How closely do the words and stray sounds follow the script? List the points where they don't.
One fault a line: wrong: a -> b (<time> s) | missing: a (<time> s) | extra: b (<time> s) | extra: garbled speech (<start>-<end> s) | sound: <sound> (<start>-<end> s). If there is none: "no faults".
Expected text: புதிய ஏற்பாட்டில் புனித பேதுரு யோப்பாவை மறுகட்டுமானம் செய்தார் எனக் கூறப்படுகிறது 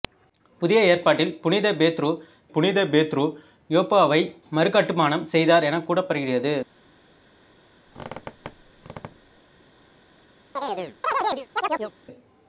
extra: புனித பேதுரு (2.5 s)
sound: squeak (7.9-9.4 s)
sound: chirp (10.6-11.9 s)